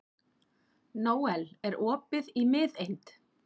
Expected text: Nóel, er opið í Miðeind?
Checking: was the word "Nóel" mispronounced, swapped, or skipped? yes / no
no